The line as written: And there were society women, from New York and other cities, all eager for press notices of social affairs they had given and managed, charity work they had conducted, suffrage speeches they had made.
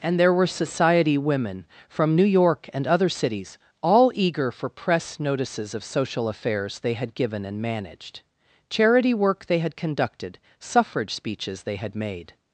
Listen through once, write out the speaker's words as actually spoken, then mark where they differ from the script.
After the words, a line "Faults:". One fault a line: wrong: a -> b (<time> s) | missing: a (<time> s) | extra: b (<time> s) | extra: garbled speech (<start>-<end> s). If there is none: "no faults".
And there were society women, from New York and other cities, all eager for press notices of social affairs they had given and managed, charity work they had conducted, suffrage speeches they had made.
Faults:
no faults